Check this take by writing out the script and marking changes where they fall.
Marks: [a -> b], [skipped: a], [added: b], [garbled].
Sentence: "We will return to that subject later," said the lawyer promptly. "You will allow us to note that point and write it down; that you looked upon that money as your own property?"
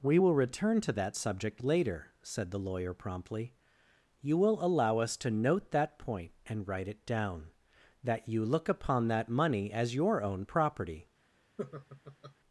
"We will return to that subject later," said the lawyer promptly. "You will allow us to note that point and write it down; that you [looked -> look] upon that money as your own property?"